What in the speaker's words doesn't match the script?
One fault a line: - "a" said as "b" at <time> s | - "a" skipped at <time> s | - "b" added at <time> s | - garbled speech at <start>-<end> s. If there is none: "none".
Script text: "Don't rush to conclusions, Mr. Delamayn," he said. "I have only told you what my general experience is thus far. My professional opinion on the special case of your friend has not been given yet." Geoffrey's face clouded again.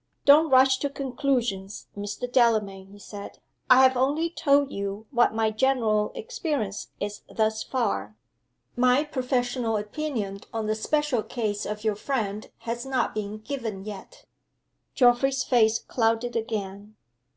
none